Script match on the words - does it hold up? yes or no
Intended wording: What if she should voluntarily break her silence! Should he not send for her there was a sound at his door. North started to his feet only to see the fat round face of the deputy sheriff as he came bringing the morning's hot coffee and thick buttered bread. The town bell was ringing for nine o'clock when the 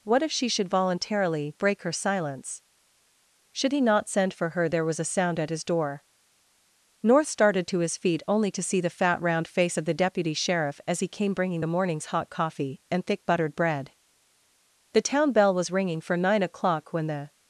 yes